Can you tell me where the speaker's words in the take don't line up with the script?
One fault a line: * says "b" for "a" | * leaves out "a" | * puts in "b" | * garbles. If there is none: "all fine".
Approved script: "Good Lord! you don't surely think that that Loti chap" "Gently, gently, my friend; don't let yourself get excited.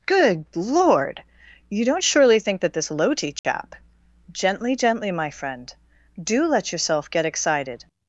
* says "this" for "that"
* says "do" for "don't"